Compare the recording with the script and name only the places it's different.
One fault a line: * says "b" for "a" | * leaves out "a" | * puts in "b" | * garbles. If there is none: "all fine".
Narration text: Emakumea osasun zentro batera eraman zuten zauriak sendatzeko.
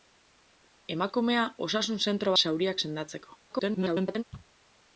* leaves out "batera eraman zuten"
* garbles